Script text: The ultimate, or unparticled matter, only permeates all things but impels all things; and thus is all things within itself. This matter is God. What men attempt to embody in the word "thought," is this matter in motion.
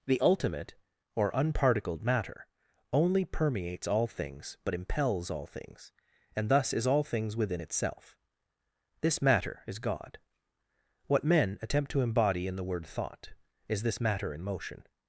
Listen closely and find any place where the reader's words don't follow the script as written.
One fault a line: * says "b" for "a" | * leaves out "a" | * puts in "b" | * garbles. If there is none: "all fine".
all fine